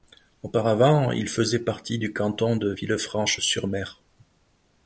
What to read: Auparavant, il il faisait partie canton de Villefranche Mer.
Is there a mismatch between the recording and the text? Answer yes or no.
yes